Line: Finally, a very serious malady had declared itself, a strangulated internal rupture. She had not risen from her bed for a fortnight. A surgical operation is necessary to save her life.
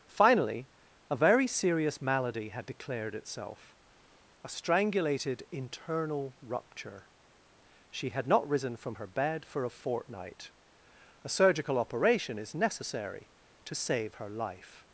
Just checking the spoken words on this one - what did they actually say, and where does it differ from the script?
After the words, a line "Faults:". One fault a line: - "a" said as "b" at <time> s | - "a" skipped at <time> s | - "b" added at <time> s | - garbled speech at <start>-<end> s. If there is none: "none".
Finally, a very serious malady had declared itself, a strangulated internal rupture. She had not risen from her bed for a fortnight. A surgical operation is necessary to save her life.
Faults:
none